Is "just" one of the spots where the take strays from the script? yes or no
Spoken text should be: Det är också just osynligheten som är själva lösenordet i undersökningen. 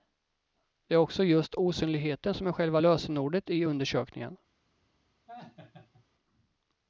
no